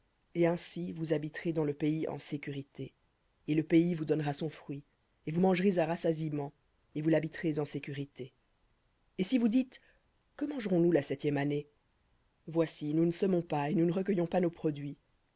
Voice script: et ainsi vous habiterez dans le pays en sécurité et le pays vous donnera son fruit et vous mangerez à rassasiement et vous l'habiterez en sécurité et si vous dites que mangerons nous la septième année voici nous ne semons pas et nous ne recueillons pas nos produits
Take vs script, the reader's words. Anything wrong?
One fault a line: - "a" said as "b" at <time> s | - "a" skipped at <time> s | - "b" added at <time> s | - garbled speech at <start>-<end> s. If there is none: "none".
none